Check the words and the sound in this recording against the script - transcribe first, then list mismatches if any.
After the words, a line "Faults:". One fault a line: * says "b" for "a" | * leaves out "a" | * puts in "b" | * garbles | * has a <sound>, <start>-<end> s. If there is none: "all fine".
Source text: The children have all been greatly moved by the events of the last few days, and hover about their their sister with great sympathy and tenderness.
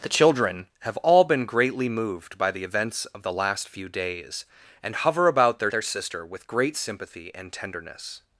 The children have all been greatly moved by the events of the last few days, and hover about their their sister with great sympathy and tenderness.
Faults:
all fine